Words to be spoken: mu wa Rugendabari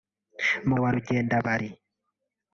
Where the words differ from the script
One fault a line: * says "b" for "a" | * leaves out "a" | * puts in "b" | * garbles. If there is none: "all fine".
all fine